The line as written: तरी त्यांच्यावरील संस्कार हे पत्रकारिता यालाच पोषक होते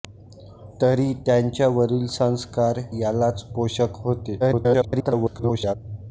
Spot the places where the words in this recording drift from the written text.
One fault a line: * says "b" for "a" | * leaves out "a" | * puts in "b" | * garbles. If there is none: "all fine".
* leaves out "हे पत्रकारिता"
* garbles